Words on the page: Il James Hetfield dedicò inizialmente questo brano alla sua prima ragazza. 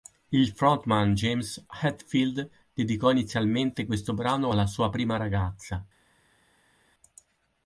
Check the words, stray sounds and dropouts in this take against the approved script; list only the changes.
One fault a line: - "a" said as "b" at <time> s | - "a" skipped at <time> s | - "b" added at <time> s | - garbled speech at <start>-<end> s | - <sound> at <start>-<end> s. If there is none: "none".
- "frontman" added at 0.5 s